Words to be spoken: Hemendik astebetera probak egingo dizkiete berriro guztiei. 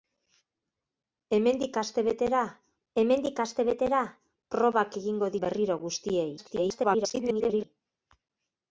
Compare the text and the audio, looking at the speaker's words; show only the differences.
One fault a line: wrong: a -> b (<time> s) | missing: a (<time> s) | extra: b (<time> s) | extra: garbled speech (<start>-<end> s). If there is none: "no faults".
extra: hemendik astebetera (3.0 s)
missing: dizkiete (5.3 s)
extra: garbled speech (6.4-7.6 s)